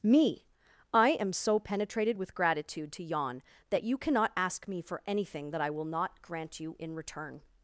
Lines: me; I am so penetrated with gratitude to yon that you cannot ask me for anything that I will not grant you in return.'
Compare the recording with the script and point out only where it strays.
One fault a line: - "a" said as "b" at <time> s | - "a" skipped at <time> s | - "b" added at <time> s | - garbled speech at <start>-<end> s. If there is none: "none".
none